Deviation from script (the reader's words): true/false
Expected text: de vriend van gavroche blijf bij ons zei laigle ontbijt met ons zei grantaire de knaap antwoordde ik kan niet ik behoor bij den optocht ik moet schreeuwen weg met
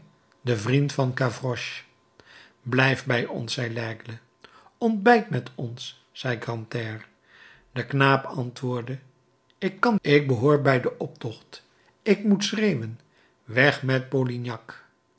true